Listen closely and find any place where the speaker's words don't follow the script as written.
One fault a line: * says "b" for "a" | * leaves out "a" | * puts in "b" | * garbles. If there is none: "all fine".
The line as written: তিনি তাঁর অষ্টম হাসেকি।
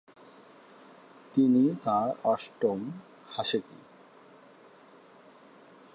all fine